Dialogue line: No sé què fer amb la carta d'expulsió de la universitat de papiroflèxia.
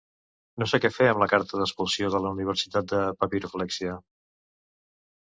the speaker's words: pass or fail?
pass